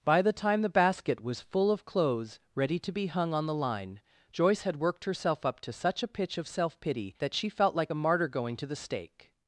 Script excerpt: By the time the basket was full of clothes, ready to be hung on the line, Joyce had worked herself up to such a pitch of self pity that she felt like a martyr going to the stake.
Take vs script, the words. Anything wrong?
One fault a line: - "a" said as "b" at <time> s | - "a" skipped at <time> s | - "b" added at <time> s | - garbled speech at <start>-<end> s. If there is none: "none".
none